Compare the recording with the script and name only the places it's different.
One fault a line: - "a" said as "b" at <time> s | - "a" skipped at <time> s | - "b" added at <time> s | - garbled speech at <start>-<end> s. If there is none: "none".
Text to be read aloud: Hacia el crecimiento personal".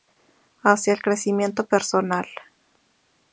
none